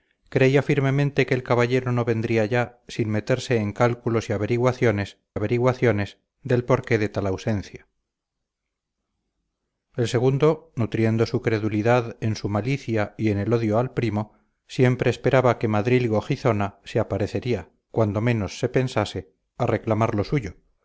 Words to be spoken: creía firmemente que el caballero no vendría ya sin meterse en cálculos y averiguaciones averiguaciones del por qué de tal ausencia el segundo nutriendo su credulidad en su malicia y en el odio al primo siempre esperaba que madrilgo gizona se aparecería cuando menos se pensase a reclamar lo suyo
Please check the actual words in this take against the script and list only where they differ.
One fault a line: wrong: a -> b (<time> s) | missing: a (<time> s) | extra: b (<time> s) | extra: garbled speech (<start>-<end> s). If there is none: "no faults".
no faults